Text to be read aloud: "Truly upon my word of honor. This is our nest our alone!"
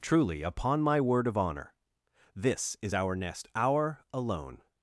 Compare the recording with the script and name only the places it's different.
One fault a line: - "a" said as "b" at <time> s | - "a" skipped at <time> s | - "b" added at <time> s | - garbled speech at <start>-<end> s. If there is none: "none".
none